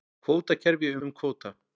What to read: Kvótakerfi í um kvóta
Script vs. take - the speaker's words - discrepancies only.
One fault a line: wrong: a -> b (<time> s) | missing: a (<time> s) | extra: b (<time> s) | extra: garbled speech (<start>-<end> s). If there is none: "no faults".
no faults